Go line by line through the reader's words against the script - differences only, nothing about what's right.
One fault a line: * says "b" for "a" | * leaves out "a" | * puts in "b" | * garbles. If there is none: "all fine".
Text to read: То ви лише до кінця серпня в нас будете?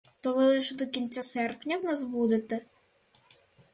all fine